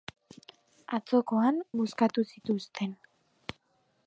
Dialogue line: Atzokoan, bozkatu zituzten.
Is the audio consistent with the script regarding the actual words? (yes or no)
yes